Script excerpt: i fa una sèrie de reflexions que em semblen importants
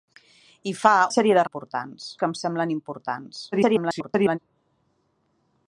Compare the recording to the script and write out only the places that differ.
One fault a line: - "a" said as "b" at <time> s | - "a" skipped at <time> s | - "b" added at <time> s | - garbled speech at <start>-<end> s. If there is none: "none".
- "una" skipped at 0.9 s
- "reflexions" said as "importants" at 1.4 s
- garbled speech at 3.5-4.4 s